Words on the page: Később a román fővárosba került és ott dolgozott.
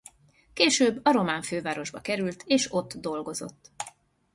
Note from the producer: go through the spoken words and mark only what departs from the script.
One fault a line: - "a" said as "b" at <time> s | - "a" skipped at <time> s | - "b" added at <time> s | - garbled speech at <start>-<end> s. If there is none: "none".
none